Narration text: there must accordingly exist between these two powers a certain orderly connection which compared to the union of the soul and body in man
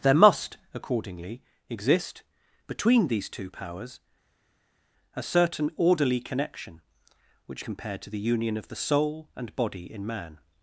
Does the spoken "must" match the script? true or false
true